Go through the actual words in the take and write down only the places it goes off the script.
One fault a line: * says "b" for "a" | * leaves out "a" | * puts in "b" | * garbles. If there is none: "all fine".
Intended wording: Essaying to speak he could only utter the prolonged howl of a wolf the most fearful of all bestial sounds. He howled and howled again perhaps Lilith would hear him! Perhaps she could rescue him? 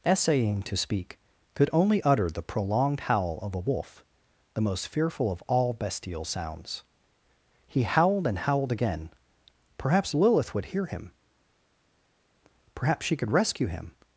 * leaves out "he"